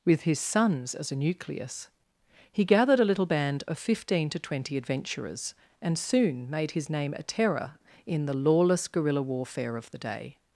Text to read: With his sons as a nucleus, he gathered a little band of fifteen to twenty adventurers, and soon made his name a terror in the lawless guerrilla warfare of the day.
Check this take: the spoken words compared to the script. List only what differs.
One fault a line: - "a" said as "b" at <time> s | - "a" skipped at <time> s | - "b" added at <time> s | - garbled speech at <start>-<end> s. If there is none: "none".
none